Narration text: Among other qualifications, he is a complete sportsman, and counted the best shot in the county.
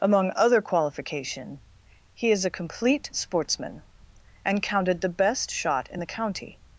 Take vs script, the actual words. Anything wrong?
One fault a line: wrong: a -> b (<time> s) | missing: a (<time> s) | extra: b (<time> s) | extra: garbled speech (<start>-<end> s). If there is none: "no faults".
wrong: qualifications -> qualification (0.6 s)